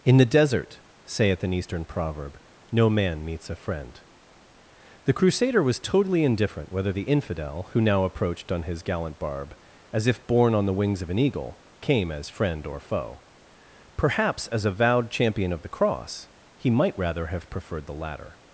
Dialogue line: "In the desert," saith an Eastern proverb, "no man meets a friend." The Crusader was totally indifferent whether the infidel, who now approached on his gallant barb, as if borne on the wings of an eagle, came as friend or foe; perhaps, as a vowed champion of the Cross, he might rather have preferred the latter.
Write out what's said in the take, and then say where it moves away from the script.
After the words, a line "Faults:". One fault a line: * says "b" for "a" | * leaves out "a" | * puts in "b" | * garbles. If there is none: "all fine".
"In the desert," saith an Eastern proverb, "no man meets a friend." The Crusader was totally indifferent whether the infidel, who now approached on his gallant barb, as if borne on the wings of an eagle, came as friend or foe; perhaps, as a vowed champion of the Cross, he might rather have preferred the latter.
Faults:
all fine